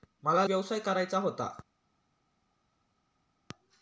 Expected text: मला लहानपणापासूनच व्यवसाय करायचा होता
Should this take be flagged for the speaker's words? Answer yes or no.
yes